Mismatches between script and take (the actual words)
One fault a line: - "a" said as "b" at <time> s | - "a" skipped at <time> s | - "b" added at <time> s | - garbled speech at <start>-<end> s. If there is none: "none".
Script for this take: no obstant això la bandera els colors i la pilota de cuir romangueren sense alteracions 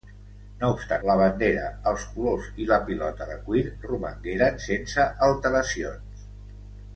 - "això" skipped at 1.0 s